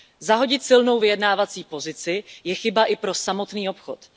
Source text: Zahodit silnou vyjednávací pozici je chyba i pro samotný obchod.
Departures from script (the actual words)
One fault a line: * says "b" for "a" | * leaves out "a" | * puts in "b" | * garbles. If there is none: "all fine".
all fine